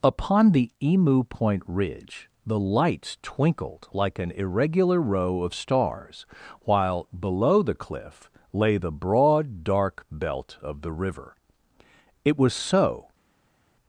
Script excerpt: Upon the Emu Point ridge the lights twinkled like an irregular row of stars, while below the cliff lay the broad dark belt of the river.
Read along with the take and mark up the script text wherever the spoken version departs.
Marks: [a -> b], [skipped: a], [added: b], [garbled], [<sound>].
Upon the Emu Point ridge the lights twinkled like an irregular row of stars, while below the cliff lay the broad dark belt of the river. [added: It was so]